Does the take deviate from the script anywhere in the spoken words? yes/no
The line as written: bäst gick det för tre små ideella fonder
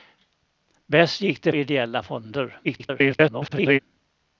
yes